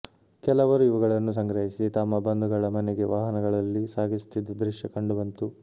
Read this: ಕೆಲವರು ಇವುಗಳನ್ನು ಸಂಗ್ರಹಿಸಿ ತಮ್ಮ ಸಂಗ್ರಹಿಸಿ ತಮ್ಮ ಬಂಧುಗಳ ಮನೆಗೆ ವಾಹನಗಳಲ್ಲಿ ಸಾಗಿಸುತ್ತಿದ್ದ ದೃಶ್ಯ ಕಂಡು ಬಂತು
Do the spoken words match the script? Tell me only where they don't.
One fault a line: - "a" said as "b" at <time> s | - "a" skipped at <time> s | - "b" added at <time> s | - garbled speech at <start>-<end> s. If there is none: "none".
- "ಸಂಗ್ರಹಿಸಿ ತಮ್ಮ" skipped at 2.2 s